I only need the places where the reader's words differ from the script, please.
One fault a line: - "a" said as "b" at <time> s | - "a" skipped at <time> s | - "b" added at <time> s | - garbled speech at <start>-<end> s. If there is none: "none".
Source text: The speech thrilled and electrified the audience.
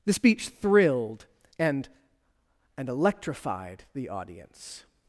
- "and" added at 2.8 s